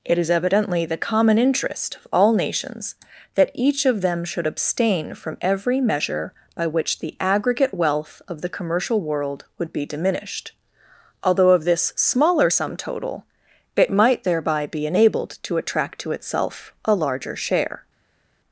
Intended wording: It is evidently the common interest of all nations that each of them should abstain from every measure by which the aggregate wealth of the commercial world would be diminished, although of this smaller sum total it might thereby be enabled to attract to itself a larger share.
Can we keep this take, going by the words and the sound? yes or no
yes